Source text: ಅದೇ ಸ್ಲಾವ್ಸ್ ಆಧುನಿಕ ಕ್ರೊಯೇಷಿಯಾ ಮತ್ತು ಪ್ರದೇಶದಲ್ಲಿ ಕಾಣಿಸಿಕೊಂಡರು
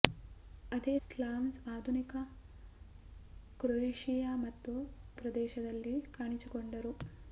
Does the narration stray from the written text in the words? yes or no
no